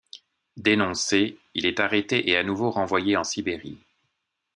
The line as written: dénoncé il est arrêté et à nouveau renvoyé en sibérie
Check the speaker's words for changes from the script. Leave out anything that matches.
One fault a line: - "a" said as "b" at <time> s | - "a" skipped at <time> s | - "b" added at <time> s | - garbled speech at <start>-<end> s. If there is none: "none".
none